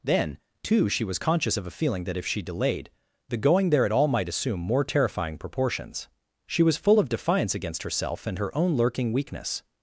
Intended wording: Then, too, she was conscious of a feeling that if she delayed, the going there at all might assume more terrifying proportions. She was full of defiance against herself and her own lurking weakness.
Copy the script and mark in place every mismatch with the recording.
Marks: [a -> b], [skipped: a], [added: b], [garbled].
Then, too, she was conscious of a feeling that if she delayed, the going there at all might assume more terrifying proportions. She was full of defiance against herself and her own lurking weakness.